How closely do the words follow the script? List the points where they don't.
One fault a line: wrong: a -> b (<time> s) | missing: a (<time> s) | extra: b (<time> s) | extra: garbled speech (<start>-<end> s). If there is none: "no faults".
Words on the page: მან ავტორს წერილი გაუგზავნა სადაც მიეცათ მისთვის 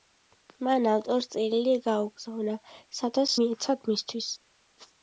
no faults